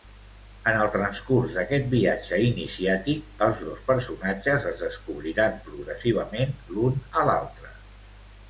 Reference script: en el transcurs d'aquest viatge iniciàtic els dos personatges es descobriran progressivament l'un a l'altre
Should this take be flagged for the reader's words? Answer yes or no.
no